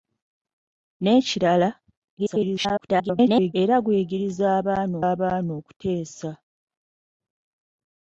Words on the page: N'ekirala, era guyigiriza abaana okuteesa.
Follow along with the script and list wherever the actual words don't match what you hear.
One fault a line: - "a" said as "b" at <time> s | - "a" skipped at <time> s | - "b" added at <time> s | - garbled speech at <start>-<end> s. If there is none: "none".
- garbled speech at 2.2-3.5 s
- "abaana" added at 5.1 s